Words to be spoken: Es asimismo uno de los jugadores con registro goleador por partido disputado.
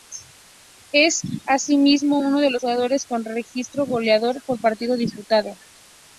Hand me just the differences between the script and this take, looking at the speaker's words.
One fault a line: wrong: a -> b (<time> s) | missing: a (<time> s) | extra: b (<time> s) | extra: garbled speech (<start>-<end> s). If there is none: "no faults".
no faults